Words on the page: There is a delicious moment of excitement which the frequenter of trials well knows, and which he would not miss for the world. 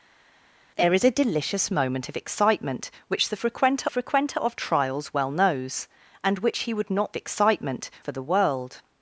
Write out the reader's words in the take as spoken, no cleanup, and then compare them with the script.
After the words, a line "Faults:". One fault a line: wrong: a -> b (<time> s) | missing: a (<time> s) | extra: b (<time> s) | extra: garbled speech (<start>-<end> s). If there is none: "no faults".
There is a delicious moment of excitement which the frequenter frequenter of trials well knows, and which he would not excitement for the world.
Faults:
extra: frequenter (3.9 s)
wrong: miss -> excitement (7.2 s)